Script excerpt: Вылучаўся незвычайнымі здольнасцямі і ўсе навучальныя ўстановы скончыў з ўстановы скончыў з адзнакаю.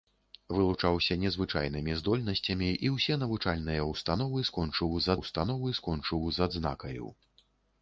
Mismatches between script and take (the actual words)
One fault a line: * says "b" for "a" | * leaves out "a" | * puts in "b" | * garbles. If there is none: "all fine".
all fine